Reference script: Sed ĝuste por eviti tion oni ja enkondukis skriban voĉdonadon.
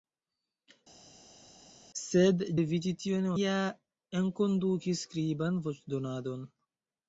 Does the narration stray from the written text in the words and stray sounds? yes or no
yes